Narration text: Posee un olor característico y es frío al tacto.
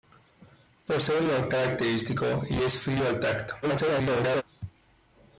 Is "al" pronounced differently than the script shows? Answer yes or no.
no